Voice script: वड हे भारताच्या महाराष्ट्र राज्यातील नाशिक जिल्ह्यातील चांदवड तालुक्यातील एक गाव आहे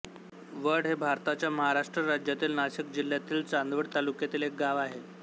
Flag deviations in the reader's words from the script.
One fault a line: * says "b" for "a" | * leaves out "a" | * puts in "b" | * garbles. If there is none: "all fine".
all fine